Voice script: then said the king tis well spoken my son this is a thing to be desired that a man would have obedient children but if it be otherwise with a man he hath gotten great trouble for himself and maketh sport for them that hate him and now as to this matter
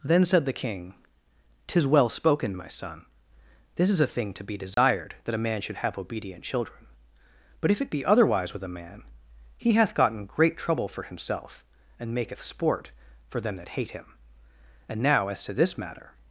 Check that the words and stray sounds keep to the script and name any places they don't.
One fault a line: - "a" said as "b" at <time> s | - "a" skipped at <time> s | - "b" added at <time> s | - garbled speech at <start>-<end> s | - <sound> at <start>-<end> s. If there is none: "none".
- dropout at 4.7-4.8 s
- "would" said as "should" at 5.6 s